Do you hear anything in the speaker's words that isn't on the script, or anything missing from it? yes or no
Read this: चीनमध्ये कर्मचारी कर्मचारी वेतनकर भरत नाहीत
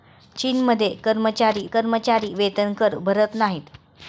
no